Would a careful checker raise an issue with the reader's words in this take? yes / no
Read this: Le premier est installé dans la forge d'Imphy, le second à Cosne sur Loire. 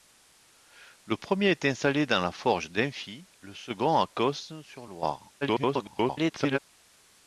yes